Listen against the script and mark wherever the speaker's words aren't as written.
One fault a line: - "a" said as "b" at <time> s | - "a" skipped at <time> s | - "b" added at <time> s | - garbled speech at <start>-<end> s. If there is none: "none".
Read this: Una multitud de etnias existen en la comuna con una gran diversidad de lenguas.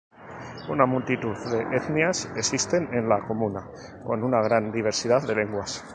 none